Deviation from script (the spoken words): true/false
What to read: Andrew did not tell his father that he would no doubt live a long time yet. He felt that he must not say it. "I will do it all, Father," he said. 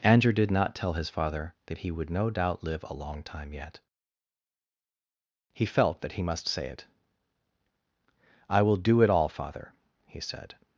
true